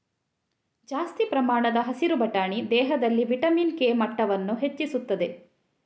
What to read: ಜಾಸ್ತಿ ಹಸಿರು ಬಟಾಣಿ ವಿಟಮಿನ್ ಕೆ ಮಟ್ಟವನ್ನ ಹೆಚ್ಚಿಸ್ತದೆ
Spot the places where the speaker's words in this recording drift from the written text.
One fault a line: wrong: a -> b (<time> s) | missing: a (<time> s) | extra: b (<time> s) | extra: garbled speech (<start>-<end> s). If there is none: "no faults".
extra: ಪ್ರಮಾಣದ (1.2 s)
extra: ದೇಹದಲ್ಲಿ (2.7 s)